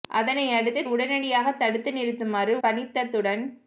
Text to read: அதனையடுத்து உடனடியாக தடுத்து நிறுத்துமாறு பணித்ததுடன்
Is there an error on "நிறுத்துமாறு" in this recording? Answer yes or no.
no